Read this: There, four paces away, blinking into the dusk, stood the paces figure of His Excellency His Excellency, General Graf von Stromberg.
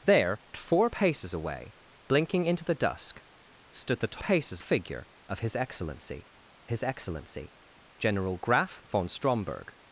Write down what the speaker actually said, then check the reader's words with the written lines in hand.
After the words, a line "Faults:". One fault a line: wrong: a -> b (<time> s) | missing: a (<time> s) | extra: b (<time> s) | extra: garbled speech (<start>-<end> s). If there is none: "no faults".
There, four paces away, blinking into the dusk, stood the paces figure of His Excellency His Excellency, General Graf von Stromberg.
Faults:
no faults